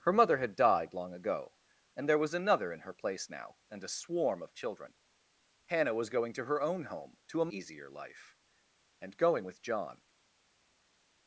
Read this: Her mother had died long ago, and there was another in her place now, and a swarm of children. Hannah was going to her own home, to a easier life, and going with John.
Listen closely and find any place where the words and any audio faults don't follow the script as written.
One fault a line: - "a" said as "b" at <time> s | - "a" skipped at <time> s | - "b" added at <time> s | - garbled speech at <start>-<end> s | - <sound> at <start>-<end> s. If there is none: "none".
none